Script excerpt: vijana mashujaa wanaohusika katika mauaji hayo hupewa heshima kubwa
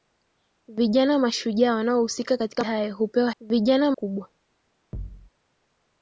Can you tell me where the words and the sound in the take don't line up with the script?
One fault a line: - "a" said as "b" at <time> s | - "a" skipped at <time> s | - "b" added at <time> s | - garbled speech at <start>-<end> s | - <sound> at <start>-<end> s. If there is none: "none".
- "mauaji" skipped at 2.6 s
- "heshima" said as "vijana" at 3.4 s
- thud at 4.9-5.3 s